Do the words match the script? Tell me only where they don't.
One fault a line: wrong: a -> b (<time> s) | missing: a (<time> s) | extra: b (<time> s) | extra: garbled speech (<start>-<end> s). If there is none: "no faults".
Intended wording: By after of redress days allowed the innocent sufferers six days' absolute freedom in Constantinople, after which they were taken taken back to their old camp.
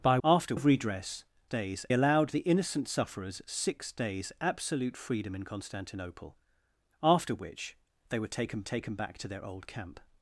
no faults